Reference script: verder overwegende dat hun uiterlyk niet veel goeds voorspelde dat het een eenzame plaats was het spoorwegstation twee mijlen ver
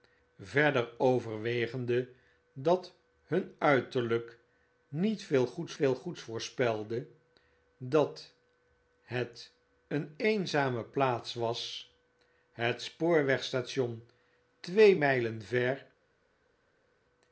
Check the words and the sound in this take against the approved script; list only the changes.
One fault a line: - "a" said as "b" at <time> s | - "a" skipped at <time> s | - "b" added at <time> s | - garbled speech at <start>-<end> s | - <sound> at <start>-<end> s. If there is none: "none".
- "veel goeds" added at 5.7 s